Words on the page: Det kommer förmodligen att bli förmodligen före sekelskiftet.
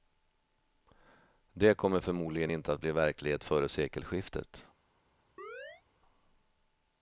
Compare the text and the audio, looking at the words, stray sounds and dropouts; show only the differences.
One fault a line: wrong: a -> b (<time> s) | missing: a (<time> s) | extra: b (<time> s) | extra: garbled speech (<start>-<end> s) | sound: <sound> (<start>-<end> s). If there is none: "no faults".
extra: inte (2.5 s)
wrong: förmodligen -> verklighet (2.9 s)
sound: chirp (5.4-5.8 s)